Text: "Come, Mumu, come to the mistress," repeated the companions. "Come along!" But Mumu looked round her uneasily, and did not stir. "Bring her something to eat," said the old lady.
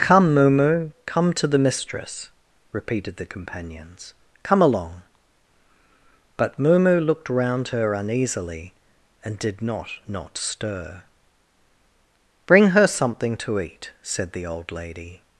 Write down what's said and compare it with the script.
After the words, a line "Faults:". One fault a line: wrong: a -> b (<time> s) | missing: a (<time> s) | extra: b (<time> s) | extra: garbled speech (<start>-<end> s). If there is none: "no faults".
"Come, Mumu, come to the mistress," repeated the companions. "Come along!" But Mumu looked round her uneasily, and did not not stir. "Bring her something to eat," said the old lady.
Faults:
extra: not (10.1 s)